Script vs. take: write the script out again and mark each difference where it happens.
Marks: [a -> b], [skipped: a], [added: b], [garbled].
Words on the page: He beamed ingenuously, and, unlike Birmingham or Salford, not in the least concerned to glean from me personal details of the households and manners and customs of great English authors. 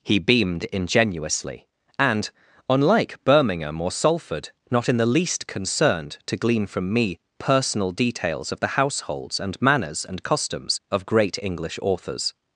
He beamed ingenuously, and, unlike Birmingham or Salford, not in the least concerned to glean from me personal details of the households and manners and customs of great English authors.